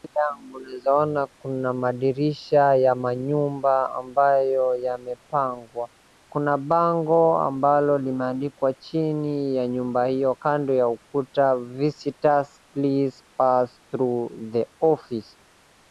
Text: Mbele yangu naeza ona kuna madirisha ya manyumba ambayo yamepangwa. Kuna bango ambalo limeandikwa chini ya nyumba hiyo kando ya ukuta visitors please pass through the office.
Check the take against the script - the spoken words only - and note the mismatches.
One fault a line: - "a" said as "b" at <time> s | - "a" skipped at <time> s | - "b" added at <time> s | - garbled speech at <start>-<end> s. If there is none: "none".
none